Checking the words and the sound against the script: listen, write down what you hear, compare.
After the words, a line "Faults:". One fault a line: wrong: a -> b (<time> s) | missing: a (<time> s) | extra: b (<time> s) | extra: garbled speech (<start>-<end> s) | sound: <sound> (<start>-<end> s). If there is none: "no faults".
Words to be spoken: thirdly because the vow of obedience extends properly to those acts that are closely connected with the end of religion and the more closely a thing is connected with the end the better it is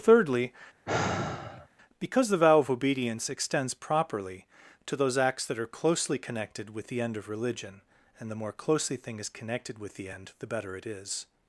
thirdly because the vow of obedience extends properly to those acts that are closely connected with the end of religion and the more closely thing is connected with the end the better it is
Faults:
sound: sigh (0.8-1.7 s)
missing: a (9.0 s)